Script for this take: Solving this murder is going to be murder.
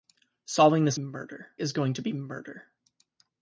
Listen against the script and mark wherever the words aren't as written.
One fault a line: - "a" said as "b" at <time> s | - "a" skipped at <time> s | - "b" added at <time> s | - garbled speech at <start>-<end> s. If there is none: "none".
none